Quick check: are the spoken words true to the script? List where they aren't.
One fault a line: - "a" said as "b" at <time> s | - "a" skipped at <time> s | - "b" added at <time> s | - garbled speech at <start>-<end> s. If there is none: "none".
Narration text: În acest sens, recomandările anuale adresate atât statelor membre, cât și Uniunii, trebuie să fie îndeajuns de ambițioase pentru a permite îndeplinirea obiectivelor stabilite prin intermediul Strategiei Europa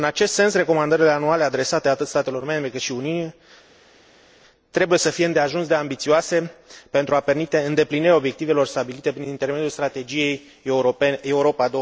none